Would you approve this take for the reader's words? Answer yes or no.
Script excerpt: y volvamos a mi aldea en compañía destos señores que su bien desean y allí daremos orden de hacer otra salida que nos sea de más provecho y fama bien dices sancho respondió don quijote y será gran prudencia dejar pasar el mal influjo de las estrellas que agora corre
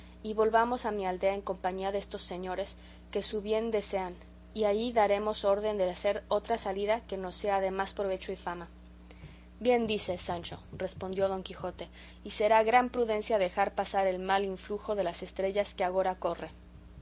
yes